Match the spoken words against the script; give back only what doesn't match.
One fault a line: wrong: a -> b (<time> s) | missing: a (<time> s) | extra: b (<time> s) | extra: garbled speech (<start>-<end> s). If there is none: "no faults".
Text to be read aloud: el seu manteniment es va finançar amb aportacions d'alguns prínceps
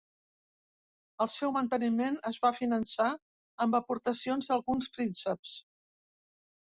no faults